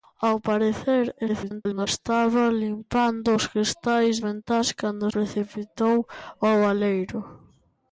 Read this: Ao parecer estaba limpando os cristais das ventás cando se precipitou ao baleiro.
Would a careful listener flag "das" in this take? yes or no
yes